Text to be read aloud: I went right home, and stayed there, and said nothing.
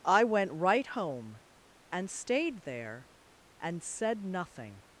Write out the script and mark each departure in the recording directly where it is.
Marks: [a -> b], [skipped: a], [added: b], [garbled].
I went right home, and stayed there, and said nothing.